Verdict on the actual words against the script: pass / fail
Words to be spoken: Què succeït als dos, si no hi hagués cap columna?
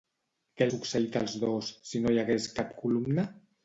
pass